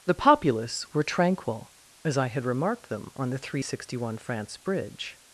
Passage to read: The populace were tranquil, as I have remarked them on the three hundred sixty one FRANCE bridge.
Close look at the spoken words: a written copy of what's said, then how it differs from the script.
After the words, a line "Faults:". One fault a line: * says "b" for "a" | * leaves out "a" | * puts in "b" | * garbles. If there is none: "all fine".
The populace were tranquil, as I had remarked them on the three hundred sixty one FRANCE bridge.
Faults:
* says "had" for "have"